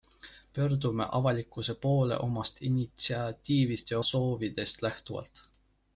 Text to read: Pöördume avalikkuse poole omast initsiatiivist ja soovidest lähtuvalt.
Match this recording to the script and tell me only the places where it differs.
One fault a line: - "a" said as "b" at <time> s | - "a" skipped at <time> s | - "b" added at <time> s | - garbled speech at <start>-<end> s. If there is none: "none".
none